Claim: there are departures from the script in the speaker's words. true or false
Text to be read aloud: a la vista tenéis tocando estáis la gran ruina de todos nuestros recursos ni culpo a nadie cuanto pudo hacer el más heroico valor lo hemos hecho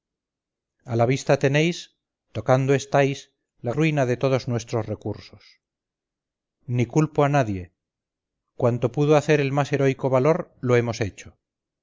true